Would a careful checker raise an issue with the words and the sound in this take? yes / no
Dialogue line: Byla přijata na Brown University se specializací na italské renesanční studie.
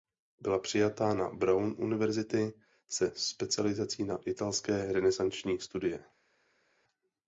no